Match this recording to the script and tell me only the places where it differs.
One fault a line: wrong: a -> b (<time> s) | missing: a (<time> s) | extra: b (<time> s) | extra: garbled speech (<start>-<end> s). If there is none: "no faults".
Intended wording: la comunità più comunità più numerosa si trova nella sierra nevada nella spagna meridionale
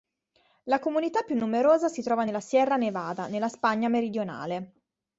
missing: comunità più (1.4 s)